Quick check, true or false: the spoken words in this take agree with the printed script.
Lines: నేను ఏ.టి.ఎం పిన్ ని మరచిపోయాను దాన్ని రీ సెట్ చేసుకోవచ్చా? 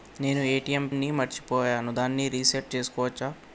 false